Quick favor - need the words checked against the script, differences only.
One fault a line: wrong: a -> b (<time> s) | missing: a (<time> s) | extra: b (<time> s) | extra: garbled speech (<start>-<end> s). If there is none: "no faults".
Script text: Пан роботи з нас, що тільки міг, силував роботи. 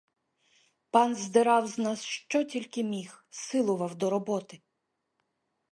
wrong: роботи -> здирав (1.1 s)
extra: до (3.9 s)